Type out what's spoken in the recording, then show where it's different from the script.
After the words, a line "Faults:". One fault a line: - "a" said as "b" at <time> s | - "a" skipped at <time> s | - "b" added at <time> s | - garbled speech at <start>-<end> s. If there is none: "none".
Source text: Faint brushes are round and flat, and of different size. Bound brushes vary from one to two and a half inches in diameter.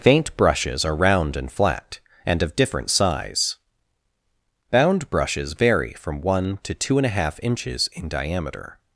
Faint brushes are round and flat, and of different size. Bound brushes vary from one to two and a half inches in diameter.
Faults:
none